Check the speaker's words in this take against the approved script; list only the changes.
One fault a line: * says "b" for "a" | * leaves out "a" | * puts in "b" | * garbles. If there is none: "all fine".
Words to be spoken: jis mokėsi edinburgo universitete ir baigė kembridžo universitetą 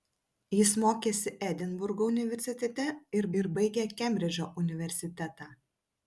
* puts in "ir"